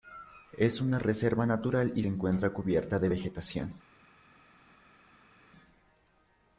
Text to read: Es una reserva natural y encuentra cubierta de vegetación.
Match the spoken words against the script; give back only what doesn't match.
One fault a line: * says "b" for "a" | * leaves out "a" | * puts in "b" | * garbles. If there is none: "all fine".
all fine